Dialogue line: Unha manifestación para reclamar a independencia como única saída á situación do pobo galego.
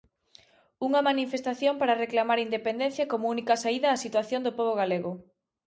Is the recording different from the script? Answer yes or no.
no